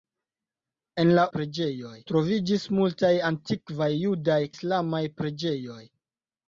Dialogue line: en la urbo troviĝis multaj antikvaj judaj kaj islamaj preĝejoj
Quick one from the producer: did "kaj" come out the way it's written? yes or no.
no